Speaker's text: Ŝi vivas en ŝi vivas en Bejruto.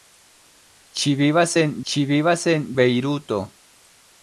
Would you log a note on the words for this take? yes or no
no